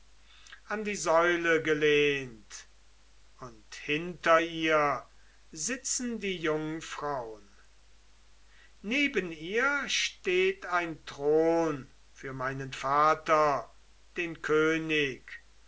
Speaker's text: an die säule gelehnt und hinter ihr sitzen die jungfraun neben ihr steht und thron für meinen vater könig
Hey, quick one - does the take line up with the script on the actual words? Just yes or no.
no